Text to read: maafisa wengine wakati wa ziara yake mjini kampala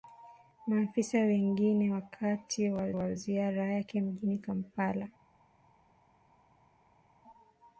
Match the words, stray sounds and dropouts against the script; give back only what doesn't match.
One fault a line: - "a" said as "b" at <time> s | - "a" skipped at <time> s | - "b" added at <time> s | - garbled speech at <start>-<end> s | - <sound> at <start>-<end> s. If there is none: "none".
- "wa" added at 2.9 s